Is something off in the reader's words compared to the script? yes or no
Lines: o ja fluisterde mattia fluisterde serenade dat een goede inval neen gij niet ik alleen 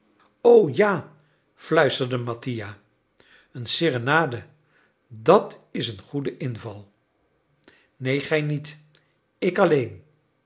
yes